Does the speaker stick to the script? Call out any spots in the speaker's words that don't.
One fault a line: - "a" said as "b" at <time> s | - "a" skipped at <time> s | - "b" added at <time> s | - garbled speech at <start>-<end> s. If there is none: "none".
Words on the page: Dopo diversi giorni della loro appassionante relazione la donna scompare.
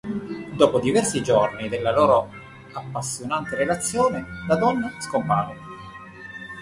none